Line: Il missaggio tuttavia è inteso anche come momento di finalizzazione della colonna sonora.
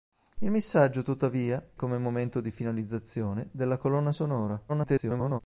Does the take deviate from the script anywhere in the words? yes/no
yes